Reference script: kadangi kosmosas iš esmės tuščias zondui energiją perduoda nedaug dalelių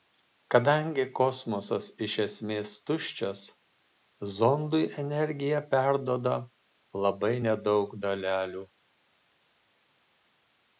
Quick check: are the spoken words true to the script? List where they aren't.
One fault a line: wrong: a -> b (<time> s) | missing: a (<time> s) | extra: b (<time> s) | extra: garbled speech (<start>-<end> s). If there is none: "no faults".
extra: labai (7.1 s)